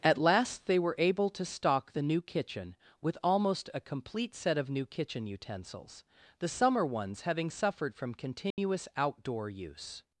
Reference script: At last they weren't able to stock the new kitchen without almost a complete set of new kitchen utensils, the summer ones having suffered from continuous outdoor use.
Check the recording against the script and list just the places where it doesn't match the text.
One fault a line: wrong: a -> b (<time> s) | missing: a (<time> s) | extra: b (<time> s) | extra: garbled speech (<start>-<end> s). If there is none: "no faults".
wrong: weren't -> were (0.8 s)
wrong: without -> with (3.0 s)